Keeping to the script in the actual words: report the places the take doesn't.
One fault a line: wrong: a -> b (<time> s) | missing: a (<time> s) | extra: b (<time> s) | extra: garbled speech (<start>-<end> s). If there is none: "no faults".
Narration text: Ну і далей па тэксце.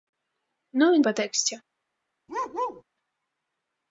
missing: далей (1.0 s)